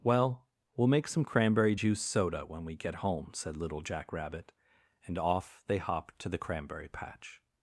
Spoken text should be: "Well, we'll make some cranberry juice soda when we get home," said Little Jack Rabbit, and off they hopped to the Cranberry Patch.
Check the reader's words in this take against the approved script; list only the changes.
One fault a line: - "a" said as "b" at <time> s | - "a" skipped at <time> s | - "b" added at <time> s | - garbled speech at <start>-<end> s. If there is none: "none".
none